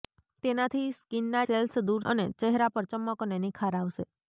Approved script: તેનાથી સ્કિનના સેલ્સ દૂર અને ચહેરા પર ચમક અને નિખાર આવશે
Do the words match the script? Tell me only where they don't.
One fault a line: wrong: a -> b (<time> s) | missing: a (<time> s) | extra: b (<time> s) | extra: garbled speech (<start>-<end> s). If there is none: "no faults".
no faults